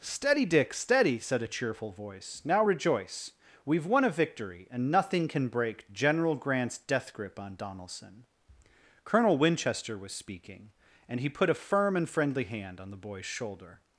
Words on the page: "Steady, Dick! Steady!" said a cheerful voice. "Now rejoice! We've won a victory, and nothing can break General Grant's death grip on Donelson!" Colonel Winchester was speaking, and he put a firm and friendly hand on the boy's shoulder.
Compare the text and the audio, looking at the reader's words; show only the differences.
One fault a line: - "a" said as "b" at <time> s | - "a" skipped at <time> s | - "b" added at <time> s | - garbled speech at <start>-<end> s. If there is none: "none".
none